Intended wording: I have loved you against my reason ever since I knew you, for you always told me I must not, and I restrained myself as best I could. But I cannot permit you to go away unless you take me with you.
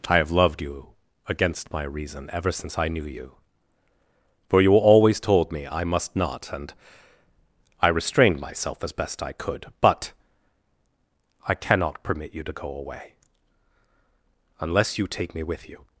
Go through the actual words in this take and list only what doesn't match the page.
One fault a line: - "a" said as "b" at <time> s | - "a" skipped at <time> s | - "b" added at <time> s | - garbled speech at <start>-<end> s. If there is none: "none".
none